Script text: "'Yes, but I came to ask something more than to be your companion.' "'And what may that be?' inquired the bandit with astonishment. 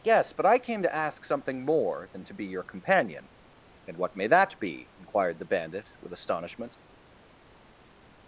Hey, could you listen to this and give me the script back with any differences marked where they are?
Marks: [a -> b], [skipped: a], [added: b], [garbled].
"'Yes, but I came to ask something more than to be your companion.' "'And what may that be?' inquired the bandit with astonishment.